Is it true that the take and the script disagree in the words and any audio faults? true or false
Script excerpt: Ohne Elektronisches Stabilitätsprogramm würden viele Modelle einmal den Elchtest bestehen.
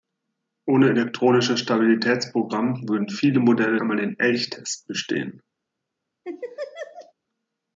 true